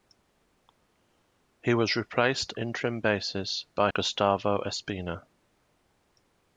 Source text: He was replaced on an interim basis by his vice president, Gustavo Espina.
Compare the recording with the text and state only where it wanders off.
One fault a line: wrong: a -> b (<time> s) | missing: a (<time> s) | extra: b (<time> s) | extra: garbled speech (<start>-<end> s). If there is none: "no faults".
missing: on an (2.5 s)
missing: his vice president (3.9 s)